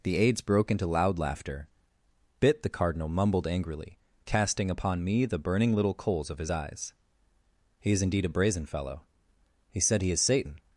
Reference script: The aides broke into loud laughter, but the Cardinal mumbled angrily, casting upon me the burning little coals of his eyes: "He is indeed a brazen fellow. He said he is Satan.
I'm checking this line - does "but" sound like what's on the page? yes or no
no